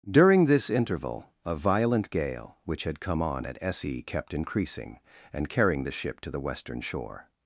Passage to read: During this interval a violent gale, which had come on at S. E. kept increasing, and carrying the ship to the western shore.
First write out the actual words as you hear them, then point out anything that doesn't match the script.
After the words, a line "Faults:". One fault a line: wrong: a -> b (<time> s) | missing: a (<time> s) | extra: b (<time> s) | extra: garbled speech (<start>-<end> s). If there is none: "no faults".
During this interval a violent gale, which had come on at S. E. kept increasing, and carrying the ship to the western shore.
Faults:
no faults